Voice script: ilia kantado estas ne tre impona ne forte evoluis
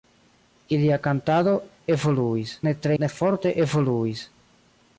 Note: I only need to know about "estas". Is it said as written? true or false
false